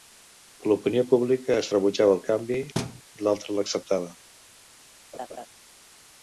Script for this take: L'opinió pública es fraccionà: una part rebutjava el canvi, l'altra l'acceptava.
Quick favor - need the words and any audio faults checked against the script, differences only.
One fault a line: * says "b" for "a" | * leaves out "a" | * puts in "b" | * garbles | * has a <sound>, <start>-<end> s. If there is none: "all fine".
* leaves out "fraccionà una part"
* has a thud, 2.7-3.0 s
* has a laugh, 5.1-5.5 s